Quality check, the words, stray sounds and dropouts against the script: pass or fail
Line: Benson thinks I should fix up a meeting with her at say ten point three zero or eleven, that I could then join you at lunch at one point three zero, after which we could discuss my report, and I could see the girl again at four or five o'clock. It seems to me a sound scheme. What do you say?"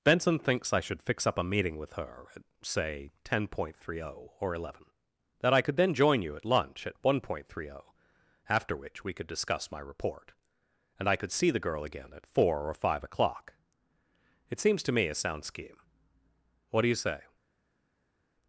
pass